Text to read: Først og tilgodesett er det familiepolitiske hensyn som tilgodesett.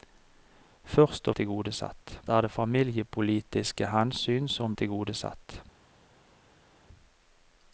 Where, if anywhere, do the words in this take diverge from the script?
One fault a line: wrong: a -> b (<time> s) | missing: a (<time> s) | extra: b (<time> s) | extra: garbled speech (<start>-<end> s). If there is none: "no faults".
no faults